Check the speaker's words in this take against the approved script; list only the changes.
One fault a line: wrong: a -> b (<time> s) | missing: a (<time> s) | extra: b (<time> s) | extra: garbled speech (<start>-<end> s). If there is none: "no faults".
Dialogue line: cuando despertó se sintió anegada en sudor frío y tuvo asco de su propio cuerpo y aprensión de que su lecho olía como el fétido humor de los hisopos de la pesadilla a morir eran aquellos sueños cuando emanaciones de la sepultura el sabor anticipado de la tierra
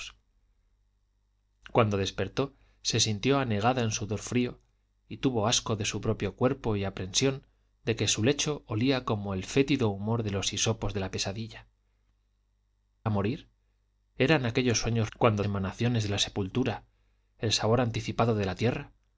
no faults